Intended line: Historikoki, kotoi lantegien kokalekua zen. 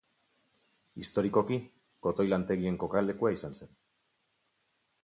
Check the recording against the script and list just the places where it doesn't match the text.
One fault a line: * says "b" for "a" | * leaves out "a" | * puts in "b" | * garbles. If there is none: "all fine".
* puts in "izan"